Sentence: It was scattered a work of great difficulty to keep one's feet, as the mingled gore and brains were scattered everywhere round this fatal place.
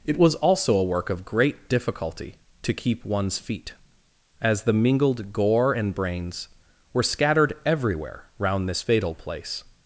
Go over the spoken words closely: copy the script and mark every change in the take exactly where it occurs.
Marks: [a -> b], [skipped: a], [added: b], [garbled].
It was [scattered -> also] a work of great difficulty to keep one's feet, as the mingled gore and brains were scattered everywhere round this fatal place.